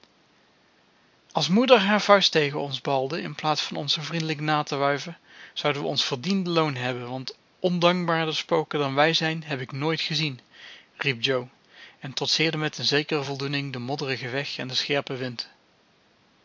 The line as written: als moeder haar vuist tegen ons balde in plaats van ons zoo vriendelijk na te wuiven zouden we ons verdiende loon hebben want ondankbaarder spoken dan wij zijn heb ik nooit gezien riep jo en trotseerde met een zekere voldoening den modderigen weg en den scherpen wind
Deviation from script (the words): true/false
false